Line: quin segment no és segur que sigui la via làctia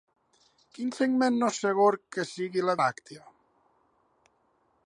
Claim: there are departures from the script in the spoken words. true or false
true